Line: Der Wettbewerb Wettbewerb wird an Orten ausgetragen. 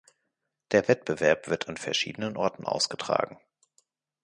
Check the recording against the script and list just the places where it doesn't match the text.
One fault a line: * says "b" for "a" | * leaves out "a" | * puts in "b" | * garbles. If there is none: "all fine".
* leaves out "Wettbewerb"
* puts in "verschiedenen"